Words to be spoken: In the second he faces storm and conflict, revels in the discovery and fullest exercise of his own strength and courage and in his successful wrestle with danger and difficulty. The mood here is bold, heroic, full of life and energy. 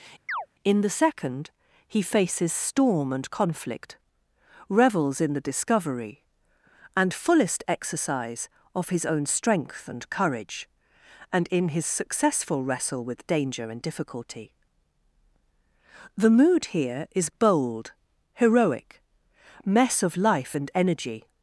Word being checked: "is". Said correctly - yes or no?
yes